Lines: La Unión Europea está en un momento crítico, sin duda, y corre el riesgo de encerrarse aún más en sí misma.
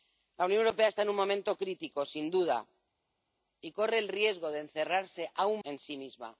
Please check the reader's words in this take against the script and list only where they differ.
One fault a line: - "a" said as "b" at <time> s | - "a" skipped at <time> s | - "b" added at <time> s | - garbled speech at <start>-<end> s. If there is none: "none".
- "más" skipped at 5.6 s